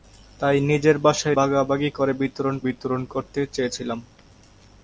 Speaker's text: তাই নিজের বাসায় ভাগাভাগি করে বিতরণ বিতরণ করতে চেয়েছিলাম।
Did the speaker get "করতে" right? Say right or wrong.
right